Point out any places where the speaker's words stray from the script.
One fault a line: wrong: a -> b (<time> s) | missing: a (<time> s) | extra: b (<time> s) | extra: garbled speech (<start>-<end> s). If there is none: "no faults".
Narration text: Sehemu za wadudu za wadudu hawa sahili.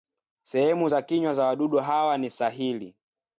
wrong: wadudu -> kinywa (1.0 s)
extra: ni (2.2 s)